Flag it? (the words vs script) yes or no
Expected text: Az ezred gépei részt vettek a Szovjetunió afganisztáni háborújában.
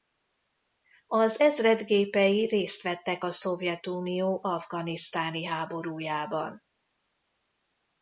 no